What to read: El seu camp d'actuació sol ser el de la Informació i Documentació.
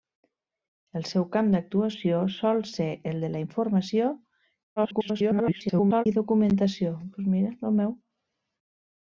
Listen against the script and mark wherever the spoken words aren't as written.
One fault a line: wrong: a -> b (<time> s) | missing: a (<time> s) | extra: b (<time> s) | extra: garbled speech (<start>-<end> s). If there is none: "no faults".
extra: garbled speech (4.8-6.0 s)